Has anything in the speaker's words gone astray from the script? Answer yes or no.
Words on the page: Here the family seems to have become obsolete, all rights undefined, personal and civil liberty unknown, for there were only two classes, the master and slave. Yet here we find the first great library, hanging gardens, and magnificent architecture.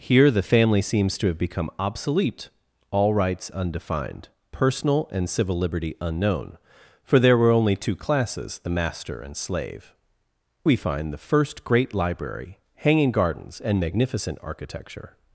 yes